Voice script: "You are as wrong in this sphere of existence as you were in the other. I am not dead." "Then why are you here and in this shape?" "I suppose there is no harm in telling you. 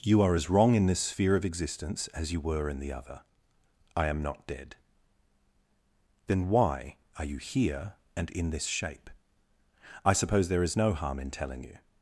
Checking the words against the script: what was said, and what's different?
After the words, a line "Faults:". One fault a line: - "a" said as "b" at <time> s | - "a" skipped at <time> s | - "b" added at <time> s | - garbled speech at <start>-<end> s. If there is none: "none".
"You are as wrong in this sphere of existence as you were in the other. I am not dead." "Then why are you here and in this shape?" "I suppose there is no harm in telling you.
Faults:
none